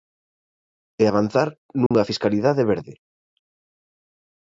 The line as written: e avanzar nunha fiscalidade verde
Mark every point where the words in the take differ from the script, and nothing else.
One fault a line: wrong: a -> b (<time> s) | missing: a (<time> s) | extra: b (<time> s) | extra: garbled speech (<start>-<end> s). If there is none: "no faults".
no faults